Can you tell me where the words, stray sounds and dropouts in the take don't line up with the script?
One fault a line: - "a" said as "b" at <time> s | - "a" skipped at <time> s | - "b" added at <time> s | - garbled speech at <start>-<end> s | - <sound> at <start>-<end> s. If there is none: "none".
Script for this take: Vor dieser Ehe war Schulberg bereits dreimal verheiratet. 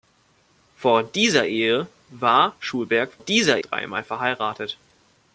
- "bereits" said as "dieser" at 3.2 s